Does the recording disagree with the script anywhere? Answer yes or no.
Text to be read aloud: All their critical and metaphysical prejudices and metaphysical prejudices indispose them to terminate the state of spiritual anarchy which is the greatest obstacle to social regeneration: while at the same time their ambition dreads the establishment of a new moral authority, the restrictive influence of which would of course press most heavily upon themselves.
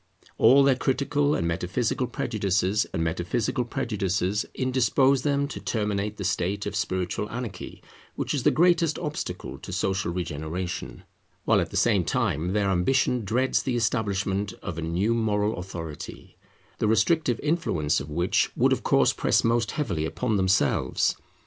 no